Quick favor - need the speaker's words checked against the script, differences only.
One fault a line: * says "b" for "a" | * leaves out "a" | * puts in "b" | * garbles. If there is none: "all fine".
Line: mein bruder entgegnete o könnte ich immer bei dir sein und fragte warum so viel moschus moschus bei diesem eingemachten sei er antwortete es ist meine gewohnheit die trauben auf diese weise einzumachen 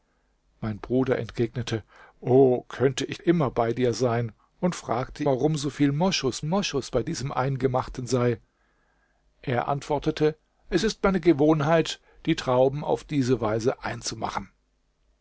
all fine